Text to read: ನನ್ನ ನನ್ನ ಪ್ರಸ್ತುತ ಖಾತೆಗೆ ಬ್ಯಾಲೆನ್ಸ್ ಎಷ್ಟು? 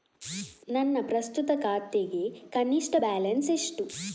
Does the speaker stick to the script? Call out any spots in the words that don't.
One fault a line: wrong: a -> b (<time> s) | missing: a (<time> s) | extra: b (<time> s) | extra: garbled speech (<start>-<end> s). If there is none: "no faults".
missing: ನನ್ನ (1.0 s)
extra: ಕನಿಷ್ಠ (2.5 s)